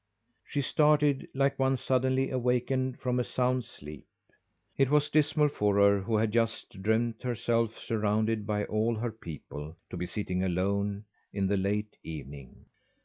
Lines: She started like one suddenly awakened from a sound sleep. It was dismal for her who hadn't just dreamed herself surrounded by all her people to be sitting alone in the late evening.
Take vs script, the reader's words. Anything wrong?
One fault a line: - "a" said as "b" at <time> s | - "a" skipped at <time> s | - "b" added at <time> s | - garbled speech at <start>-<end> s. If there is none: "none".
- "hadn't" said as "had" at 6.2 s